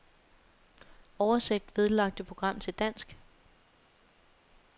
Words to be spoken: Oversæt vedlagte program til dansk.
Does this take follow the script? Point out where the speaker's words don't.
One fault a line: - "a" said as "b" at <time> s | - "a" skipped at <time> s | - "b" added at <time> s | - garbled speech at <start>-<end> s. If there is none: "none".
none